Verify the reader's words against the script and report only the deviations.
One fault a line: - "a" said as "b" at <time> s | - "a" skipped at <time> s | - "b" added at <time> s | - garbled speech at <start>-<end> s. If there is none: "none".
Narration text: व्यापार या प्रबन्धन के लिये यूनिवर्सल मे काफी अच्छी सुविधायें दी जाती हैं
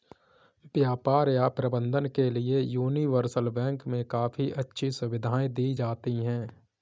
- "बैंक" added at 3.5 s